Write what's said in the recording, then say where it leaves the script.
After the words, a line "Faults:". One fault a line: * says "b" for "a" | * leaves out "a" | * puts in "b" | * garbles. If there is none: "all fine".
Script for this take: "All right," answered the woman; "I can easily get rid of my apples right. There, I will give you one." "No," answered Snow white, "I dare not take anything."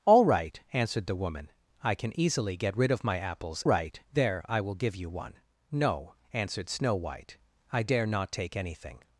"All right," answered the woman; "I can easily get rid of my apples right. There, I will give you one." "No," answered Snow white, "I dare not take anything."
Faults:
all fine